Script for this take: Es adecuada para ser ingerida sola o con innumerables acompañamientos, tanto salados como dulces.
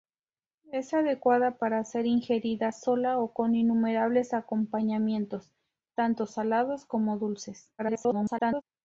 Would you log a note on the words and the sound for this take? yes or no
yes